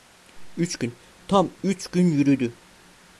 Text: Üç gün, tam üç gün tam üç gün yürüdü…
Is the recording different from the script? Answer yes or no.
yes